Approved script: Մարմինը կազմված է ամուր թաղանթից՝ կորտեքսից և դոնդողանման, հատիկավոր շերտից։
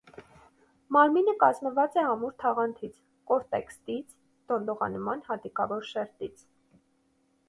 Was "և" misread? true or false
true